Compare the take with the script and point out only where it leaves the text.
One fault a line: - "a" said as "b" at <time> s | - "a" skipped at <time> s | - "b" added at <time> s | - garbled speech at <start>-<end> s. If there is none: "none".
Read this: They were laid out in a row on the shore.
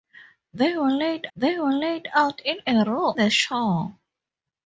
- "they were laid" added at 1.3 s
- "on" skipped at 3.1 s